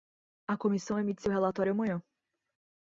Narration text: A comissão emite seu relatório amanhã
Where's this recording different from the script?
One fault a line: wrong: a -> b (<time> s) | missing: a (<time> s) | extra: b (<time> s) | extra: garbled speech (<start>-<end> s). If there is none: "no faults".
no faults